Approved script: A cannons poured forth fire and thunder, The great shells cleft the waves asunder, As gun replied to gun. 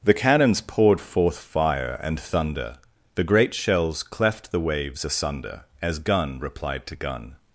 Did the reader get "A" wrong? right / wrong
wrong